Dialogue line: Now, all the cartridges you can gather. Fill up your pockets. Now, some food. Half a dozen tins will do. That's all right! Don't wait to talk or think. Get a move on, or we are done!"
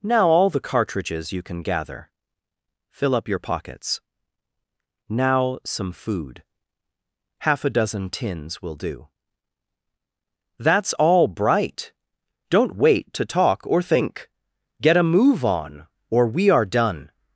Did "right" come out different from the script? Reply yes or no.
yes